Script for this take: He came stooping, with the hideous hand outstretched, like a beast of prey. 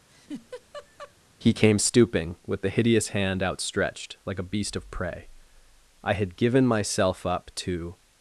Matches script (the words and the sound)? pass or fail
fail